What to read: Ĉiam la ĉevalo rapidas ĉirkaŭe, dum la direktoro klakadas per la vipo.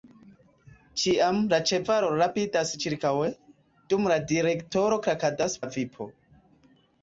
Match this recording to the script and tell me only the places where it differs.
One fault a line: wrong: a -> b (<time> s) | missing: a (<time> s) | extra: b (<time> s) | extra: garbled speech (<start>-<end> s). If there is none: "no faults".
missing: per (5.6 s)